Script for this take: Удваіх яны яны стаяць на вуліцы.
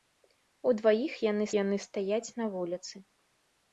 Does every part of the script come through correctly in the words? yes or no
yes